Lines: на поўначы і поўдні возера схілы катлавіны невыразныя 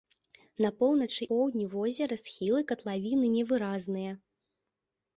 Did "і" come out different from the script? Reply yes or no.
yes